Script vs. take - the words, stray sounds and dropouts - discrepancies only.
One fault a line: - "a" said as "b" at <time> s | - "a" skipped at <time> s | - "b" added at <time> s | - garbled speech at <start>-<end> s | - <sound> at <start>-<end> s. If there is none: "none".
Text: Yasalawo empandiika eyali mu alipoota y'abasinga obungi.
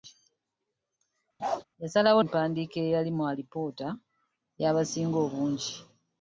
- bark at 1.4-1.6 s